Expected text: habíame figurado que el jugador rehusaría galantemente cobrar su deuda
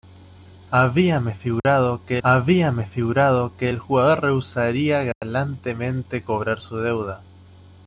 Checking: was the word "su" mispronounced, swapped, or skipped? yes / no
no